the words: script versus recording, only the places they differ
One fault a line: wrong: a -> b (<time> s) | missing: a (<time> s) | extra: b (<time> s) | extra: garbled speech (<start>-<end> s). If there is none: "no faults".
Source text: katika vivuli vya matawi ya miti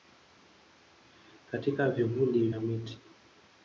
missing: vya matawi (2.5 s)